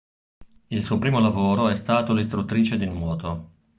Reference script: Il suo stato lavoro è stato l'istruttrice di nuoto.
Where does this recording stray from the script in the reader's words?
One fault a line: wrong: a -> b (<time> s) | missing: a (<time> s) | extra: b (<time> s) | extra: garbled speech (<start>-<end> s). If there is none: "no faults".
wrong: stato -> primo (1.0 s)